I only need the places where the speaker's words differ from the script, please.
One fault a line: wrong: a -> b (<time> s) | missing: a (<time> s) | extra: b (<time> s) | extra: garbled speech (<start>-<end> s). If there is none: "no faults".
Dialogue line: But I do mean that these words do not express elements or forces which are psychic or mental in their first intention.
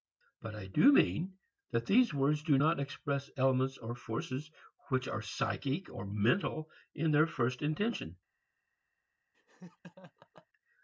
no faults